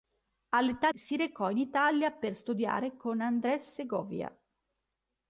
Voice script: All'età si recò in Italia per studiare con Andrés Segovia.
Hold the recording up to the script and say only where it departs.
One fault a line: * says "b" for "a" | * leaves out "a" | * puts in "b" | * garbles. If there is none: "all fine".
all fine